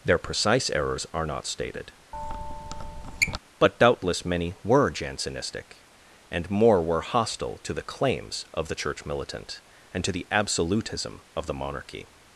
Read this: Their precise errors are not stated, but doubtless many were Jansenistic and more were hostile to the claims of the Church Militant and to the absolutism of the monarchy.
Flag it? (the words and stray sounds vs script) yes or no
yes